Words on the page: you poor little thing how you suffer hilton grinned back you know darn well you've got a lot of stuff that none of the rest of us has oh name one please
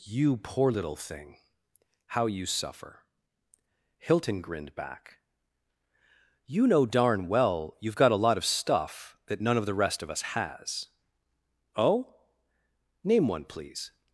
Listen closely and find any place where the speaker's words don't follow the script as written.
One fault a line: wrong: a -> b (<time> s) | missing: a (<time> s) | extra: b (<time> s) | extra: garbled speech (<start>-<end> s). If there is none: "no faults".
no faults